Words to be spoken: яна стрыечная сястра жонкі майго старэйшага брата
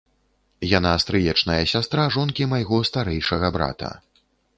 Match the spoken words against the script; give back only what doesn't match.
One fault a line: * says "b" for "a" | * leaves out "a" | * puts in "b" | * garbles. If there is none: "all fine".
all fine